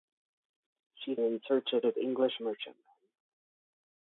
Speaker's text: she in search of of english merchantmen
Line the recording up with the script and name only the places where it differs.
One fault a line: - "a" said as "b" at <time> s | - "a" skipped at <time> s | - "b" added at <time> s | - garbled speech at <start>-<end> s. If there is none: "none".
none